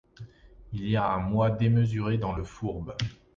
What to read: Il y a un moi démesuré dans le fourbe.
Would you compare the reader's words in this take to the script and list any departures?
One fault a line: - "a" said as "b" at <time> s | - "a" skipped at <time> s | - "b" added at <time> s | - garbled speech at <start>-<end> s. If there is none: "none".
none